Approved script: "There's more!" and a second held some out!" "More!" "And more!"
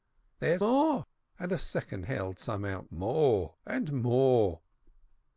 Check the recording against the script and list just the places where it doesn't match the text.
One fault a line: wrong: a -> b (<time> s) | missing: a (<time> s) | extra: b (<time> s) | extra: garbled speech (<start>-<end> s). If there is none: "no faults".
no faults